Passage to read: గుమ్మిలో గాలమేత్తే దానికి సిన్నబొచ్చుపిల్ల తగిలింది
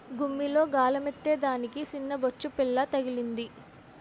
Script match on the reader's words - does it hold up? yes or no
yes